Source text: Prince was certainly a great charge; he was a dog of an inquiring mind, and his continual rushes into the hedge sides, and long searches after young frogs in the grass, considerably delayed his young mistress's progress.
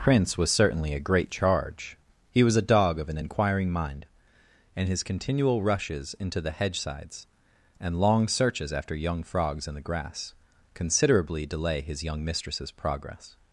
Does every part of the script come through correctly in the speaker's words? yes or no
no